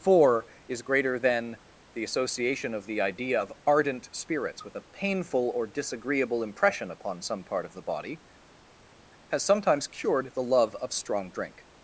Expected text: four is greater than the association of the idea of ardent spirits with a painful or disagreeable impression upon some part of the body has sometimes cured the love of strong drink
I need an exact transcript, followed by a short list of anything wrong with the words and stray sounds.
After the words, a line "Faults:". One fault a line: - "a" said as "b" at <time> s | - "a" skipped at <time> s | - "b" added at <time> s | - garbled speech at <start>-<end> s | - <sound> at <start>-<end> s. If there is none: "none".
four is greater than the association of the idea of ardent spirits with a painful or disagreeable impression upon some part of the body has sometimes cured the love of strong drink
Faults:
none